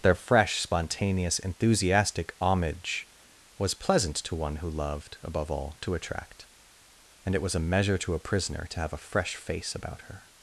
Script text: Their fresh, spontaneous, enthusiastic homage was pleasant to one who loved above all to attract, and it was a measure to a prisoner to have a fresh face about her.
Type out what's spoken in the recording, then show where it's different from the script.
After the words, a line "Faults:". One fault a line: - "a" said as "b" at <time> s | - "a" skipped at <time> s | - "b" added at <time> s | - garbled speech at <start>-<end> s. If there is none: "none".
Their fresh, spontaneous, enthusiastic homage was pleasant to one who loved above all to attract, and it was a measure to a prisoner to have a fresh face about her.
Faults:
none